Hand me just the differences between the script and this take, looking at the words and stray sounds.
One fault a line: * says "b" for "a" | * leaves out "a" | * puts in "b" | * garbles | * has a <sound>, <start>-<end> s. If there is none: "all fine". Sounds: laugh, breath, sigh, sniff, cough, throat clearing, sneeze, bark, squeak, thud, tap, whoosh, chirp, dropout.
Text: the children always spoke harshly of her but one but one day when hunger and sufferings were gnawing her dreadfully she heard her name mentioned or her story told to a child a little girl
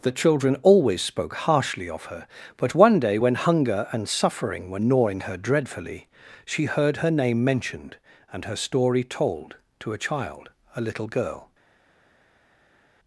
* leaves out "but one"
* says "suffering" for "sufferings"
* says "and" for "or"